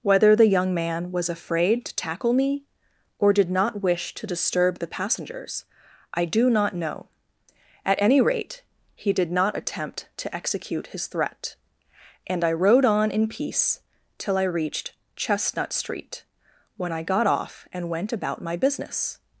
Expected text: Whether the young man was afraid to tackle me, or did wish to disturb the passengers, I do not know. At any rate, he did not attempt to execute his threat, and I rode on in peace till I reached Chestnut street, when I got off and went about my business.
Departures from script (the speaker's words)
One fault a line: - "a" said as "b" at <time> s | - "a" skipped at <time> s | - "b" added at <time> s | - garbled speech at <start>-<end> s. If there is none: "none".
- "not" added at 3.5 s